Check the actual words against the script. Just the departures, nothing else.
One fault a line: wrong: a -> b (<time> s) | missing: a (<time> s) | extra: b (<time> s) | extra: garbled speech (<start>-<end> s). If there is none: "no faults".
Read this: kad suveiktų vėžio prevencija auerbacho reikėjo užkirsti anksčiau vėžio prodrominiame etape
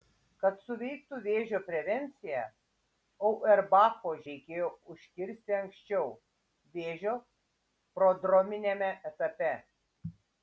no faults